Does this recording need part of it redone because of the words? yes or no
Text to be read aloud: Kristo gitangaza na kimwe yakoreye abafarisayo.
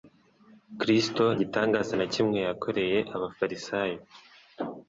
no